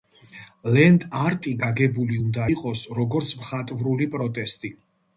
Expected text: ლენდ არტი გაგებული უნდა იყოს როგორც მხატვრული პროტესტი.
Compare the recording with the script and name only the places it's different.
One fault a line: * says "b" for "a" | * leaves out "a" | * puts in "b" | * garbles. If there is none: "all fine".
all fine